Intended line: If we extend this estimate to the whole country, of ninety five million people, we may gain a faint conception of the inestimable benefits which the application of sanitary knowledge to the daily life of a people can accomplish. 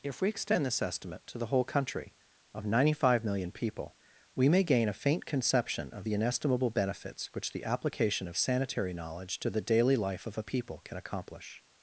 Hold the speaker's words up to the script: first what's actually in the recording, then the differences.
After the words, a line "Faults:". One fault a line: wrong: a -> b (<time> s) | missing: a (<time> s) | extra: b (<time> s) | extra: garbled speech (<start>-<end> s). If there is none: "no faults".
If we extend this estimate to the whole country, of ninety five million people, we may gain a faint conception of the inestimable benefits which the application of sanitary knowledge to the daily life of a people can accomplish.
Faults:
no faults